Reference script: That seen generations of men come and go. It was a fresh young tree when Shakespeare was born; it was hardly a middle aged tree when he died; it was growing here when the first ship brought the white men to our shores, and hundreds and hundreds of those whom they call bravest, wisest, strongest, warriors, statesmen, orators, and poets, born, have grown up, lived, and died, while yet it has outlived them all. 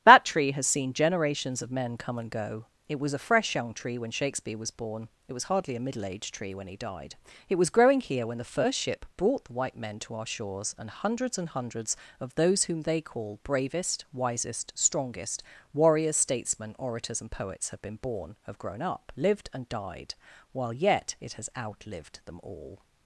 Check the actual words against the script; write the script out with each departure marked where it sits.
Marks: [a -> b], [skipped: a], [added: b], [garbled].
That [added: tree has] seen generations of men come and go. It was a fresh young tree when Shakespeare was born; it was hardly a middle aged tree when he died; it was growing here when the first ship brought the white men to our shores, and hundreds and hundreds of those whom they call bravest, wisest, strongest, warriors, statesmen, orators, and poets, [added: have been] born, have grown up, lived, and died, while yet it has outlived them all.